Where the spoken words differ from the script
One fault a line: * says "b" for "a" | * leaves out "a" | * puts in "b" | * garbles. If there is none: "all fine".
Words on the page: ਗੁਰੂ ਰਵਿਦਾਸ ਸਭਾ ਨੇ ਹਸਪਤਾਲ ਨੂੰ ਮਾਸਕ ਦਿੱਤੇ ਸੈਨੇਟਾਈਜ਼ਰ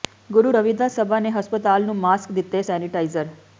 all fine